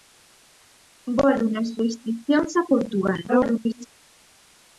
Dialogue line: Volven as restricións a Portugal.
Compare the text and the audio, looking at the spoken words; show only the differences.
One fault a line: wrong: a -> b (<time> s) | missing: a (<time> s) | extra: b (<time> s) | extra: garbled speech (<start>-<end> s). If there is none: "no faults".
extra: garbled speech (3.3-3.9 s)